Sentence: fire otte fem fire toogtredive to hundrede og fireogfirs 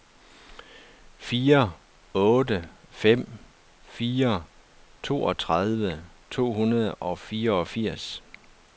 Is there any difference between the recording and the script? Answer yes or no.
no